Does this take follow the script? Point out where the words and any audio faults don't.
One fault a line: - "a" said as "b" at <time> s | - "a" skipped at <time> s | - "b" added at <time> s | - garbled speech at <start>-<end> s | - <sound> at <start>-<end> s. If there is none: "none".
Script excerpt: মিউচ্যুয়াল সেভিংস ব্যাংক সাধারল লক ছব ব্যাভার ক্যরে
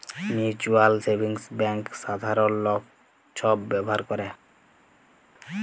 none